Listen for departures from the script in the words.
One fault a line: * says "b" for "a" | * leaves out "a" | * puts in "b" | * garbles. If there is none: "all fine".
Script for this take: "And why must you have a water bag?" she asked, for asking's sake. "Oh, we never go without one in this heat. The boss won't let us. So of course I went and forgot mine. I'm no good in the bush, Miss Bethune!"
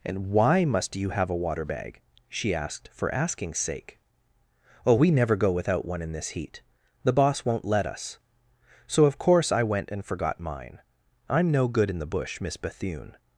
all fine